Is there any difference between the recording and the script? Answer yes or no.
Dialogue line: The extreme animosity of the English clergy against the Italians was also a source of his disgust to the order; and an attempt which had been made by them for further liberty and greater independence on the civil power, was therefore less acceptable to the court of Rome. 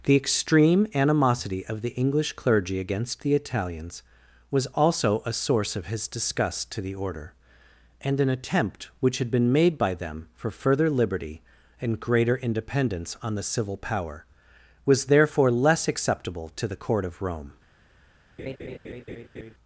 no